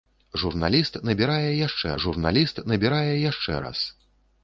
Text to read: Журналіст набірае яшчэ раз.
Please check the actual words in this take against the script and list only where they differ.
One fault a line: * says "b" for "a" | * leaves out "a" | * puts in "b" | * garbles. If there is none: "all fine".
* puts in "журналіст набірае яшчэ"